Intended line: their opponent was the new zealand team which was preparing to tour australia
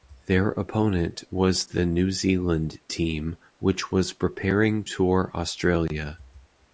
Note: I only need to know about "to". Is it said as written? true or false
false